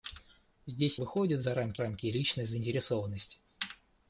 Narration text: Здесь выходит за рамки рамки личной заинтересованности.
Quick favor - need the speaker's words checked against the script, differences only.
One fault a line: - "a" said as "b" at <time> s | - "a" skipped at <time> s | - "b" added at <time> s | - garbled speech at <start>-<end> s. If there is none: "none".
none